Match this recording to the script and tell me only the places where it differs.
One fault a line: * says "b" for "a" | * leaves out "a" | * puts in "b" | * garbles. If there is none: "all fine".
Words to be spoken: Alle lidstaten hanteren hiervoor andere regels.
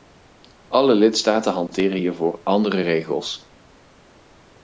all fine